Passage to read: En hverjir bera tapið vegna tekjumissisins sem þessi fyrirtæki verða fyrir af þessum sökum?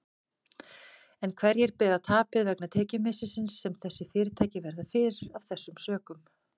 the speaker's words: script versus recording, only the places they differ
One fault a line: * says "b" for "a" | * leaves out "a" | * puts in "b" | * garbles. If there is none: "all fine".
all fine